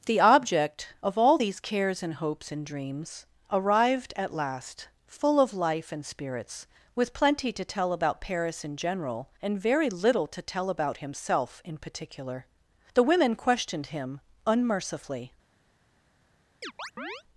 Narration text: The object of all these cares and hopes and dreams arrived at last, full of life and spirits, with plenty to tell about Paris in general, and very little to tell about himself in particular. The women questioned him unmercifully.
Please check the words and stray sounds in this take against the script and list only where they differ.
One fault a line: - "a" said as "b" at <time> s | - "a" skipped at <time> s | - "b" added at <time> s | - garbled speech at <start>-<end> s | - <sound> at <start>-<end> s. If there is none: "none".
- chirp at 16.6-17.2 s